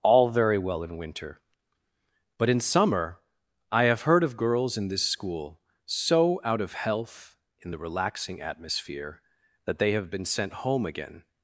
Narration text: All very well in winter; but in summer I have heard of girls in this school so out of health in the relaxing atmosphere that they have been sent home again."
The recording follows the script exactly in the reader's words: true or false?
true